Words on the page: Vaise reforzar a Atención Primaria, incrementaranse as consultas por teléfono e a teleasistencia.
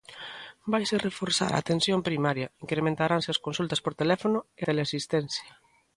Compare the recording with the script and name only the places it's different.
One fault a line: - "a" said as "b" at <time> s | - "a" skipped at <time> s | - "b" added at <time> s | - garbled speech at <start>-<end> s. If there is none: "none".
- "a" skipped at 4.6 s